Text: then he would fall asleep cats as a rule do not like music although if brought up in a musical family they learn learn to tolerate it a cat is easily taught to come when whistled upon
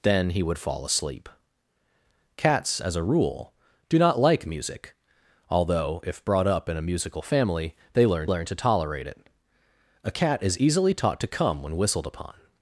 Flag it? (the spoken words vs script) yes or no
no